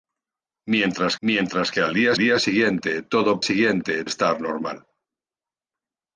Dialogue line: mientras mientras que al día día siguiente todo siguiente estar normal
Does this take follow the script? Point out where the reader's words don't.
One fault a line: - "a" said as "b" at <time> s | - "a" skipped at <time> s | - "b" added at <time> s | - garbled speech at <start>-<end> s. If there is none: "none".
none